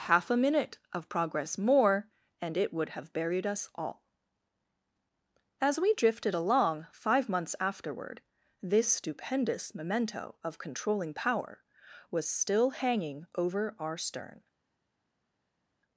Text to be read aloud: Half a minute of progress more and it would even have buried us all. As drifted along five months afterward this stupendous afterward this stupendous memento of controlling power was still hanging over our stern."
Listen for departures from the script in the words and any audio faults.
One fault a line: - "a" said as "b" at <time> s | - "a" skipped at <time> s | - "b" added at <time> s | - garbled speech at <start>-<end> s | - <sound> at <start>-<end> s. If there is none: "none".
- "even" skipped at 2.9 s
- "we" added at 5.8 s
- "afterward this stupendous" skipped at 9.8 s